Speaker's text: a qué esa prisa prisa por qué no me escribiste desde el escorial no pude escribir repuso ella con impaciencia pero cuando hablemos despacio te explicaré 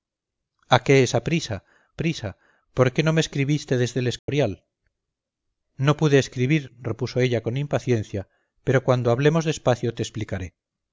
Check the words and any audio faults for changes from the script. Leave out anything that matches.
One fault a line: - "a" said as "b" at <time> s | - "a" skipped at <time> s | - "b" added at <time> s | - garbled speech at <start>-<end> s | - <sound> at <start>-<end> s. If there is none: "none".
- dropout at 4.2-4.3 s